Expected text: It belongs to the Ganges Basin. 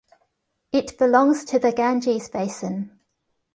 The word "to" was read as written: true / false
true